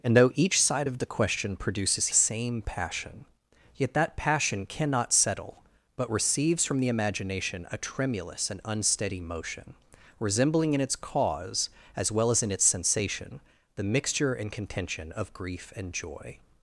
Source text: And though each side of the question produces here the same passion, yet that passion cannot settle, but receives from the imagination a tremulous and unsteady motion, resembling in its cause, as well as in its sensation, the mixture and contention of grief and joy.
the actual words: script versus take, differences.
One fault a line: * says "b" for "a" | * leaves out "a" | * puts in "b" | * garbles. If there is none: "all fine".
* leaves out "here the"